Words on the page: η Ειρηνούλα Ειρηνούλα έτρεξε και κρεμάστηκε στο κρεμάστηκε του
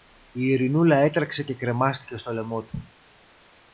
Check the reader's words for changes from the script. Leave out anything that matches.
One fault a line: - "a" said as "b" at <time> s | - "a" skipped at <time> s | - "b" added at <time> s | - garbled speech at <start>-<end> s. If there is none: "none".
- "Ειρηνούλα" skipped at 0.9 s
- "κρεμάστηκε" said as "λαιμό" at 2.3 s